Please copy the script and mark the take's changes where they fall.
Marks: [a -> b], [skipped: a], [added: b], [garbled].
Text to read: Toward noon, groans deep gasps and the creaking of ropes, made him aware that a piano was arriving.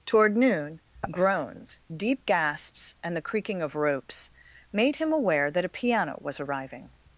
Toward noon, groans deep gasps and the creaking of ropes, made him aware that a piano was arriving.